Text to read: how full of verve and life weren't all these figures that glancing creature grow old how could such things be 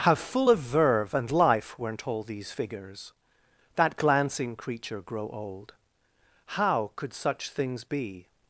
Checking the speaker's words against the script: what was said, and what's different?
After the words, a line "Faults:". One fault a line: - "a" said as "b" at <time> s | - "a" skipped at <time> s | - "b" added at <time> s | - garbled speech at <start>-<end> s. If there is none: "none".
how full of verve and life weren't all these figures that glancing creature grow old how could such things be
Faults:
none